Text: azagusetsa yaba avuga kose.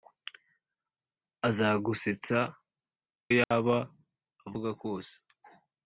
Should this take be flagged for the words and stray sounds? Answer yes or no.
yes